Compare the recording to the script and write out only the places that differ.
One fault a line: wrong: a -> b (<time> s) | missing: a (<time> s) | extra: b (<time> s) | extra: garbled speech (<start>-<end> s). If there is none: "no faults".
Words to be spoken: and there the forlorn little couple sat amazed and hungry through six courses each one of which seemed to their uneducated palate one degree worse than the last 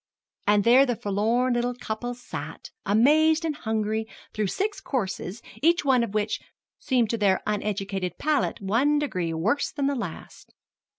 no faults